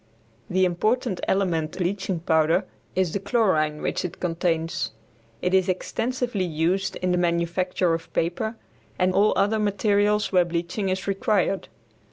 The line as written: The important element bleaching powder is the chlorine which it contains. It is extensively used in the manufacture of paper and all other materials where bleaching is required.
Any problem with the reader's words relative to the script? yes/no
no